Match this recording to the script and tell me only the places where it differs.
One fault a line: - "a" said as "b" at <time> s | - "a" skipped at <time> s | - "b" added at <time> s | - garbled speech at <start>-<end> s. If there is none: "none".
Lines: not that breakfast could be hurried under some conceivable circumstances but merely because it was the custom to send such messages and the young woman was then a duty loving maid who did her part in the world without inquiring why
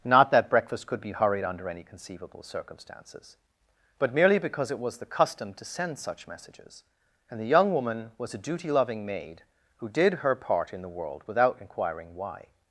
- "some" said as "any" at 1.7 s
- "then" skipped at 8.3 s